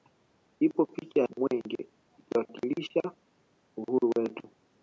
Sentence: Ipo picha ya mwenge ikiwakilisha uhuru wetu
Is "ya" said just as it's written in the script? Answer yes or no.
no